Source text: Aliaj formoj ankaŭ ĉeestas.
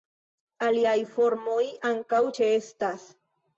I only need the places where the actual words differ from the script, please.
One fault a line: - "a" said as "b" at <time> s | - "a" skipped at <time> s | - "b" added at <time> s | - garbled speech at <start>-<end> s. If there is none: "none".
none